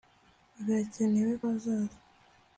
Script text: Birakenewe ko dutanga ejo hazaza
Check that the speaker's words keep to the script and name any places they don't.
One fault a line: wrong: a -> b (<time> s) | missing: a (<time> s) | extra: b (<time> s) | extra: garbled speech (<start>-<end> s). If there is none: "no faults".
missing: ko dutanga ejo (1.3 s)